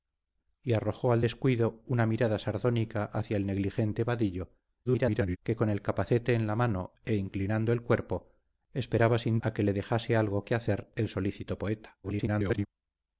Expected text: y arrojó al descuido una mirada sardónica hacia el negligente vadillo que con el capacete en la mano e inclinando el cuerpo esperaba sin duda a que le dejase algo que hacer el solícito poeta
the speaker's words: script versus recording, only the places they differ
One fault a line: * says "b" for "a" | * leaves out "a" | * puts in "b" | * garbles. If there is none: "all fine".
* garbles
* leaves out "duda"
* garbles